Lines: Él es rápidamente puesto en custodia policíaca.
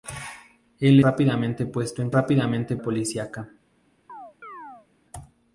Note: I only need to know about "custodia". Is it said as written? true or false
false